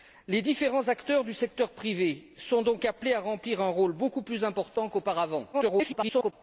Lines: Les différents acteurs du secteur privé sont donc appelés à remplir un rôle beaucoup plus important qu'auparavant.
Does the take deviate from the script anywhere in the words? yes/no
yes